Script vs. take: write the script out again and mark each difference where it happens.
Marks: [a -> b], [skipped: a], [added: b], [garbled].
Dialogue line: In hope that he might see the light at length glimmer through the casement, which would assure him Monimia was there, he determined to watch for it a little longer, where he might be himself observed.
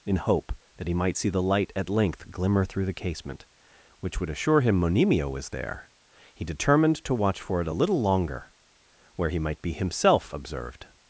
In hope that he might see the light at length glimmer through the casement, which would assure him Monimia was there, he determined to watch for it a little longer, where he might be himself observed.